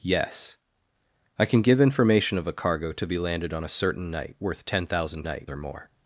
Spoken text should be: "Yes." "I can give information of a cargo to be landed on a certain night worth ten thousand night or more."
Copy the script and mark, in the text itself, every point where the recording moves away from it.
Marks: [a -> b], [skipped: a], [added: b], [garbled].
"Yes." "I can give information of a cargo to be landed on a certain night worth ten thousand night or more."